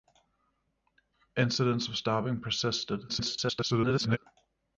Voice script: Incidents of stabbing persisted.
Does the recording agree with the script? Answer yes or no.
no